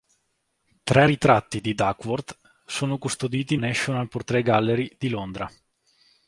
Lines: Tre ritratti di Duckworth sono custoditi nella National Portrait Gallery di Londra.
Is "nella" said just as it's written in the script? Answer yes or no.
no